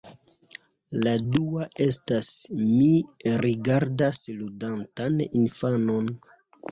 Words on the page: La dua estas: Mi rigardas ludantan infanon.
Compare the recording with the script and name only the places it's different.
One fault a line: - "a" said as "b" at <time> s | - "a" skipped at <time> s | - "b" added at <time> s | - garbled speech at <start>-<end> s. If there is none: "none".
none